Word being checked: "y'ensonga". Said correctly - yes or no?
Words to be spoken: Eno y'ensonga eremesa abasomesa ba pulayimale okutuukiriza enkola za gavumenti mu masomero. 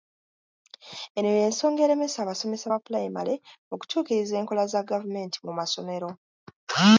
yes